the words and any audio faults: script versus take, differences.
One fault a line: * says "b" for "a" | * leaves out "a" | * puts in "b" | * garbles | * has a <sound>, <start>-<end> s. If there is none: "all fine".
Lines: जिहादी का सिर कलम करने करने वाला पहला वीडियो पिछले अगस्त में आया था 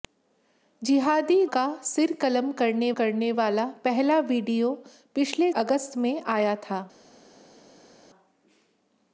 all fine